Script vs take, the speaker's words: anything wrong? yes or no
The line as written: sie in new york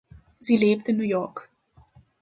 yes